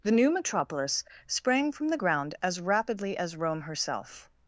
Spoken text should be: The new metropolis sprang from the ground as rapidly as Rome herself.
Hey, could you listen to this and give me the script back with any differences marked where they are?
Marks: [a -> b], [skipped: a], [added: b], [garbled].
The new metropolis sprang from the ground as rapidly as Rome herself.